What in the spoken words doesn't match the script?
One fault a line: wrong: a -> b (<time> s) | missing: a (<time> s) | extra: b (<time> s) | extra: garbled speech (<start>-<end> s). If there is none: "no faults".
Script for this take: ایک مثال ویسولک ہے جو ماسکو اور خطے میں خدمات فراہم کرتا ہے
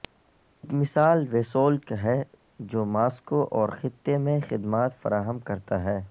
no faults